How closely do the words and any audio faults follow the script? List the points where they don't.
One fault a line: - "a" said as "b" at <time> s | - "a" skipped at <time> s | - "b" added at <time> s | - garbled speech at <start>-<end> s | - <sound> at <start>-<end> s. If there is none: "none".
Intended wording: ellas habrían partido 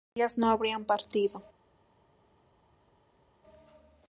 - "no" added at 0.4 s